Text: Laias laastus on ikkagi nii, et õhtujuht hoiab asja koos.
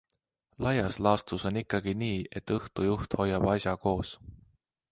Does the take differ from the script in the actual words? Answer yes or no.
no